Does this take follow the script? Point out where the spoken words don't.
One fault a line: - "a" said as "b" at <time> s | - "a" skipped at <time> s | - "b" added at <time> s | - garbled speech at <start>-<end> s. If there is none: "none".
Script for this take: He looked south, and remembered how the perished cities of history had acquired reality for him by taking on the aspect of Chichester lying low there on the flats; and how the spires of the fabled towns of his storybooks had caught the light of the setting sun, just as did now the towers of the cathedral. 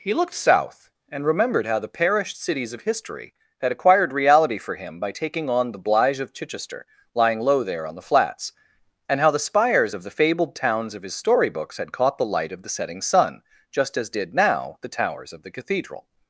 - "aspect" said as "blige" at 5.8 s